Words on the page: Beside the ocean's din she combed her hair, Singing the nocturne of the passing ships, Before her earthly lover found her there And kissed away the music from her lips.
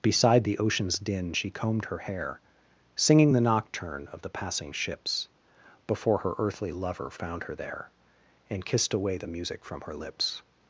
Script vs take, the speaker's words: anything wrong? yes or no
no